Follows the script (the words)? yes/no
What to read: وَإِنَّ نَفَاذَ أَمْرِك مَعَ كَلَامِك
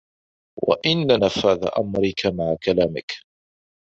yes